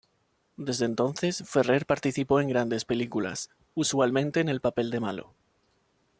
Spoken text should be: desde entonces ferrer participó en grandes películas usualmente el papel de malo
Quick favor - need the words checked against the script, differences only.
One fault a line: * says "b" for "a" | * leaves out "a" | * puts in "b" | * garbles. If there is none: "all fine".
* puts in "en"